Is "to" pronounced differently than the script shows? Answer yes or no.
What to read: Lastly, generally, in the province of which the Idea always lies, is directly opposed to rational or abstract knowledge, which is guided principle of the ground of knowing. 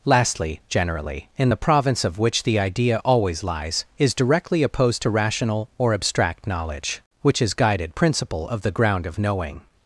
no